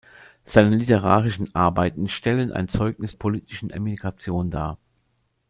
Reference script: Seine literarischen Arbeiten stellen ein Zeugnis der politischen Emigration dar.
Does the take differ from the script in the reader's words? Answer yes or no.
yes